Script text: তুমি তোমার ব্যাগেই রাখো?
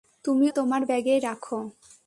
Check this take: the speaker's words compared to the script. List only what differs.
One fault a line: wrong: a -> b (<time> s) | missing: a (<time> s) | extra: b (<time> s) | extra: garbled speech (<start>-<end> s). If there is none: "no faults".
no faults